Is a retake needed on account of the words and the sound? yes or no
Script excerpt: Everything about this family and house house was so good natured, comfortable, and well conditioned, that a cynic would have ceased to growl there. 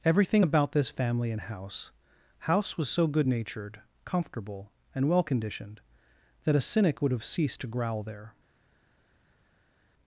no